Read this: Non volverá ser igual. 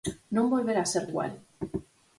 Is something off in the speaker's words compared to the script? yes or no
no